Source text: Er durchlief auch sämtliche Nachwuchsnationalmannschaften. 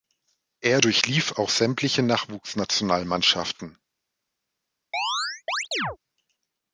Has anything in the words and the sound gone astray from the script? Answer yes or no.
yes